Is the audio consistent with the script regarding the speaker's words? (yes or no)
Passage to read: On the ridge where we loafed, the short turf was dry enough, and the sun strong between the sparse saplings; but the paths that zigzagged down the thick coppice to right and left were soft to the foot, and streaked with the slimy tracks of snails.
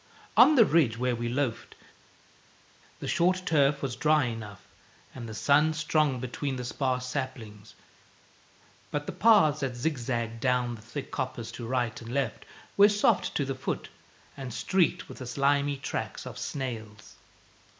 yes